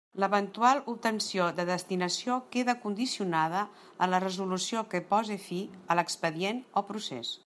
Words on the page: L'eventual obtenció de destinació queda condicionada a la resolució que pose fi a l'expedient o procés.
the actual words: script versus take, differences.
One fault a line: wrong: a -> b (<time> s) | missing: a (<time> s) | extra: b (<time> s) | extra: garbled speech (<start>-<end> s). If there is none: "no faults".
no faults